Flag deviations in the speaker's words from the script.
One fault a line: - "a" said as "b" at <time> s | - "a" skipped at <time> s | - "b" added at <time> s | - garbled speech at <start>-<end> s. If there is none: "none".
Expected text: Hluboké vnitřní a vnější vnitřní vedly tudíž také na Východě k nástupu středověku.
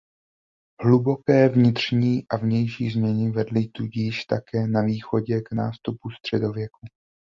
- "vnitřní" said as "změny" at 2.9 s